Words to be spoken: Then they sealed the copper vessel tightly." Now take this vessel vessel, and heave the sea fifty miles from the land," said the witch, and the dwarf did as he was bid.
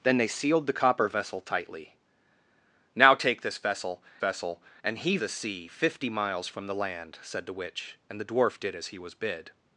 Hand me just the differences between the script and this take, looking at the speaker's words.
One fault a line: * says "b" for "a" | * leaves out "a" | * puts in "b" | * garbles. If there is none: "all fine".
all fine